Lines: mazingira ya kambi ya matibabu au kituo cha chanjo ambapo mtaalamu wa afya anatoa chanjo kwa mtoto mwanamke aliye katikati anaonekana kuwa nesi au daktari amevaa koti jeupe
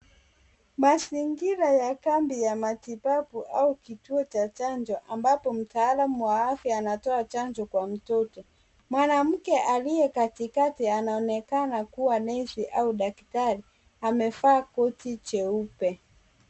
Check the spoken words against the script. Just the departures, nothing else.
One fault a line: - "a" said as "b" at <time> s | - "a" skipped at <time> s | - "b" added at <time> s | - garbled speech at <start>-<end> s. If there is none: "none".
none